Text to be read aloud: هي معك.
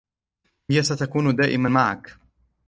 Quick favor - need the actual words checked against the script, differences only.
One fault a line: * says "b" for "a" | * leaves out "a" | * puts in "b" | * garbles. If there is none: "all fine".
* puts in "ستكون دائماً"